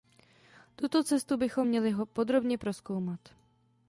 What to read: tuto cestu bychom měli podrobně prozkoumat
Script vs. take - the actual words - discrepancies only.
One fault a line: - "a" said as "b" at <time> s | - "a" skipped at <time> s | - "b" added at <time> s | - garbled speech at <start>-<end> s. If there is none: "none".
none